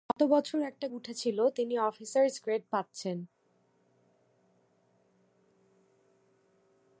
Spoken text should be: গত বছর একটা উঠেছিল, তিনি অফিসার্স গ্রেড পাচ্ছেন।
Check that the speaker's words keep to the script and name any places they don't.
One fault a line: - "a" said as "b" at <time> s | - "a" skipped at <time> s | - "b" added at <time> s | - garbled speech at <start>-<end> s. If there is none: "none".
none